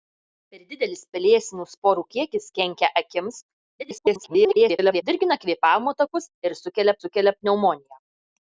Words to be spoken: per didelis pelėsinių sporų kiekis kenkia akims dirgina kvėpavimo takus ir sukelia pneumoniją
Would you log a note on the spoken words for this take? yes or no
yes